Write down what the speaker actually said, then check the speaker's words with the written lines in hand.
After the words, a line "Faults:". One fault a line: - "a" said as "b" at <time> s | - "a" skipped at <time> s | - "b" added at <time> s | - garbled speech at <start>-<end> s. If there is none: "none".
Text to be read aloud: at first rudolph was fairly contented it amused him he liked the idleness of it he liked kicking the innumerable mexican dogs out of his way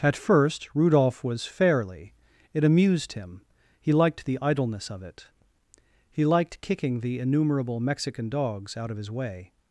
at first rudolph was fairly it amused him he liked the idleness of it he liked kicking the innumerable mexican dogs out of his way
Faults:
- "contented" skipped at 2.1 s